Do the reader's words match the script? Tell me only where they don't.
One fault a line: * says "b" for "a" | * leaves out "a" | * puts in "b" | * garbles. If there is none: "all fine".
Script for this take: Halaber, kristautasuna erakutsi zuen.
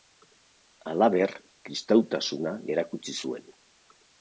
all fine